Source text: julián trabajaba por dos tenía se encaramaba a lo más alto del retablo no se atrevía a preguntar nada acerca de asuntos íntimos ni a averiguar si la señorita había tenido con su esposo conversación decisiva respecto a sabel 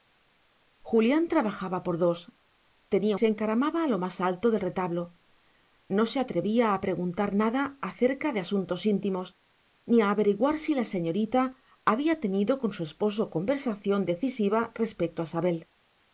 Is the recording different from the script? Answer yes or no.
no